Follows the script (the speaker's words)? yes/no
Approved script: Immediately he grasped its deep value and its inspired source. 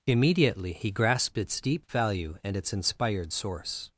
yes